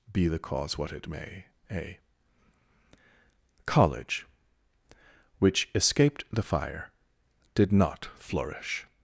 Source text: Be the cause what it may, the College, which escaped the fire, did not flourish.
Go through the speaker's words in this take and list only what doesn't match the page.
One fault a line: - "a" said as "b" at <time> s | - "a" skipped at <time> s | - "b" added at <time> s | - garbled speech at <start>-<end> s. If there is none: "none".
- "the" said as "a" at 1.7 s